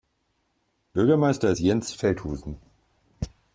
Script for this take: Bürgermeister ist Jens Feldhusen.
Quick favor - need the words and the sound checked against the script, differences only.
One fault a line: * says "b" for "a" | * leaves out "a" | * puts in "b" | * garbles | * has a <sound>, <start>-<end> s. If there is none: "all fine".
all fine